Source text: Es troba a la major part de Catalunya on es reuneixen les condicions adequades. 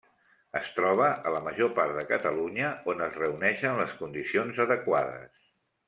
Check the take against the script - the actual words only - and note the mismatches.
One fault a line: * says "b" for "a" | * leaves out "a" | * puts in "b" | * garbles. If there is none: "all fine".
all fine